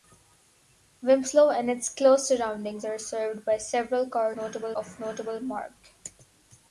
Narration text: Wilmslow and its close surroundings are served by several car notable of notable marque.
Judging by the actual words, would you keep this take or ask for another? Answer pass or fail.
pass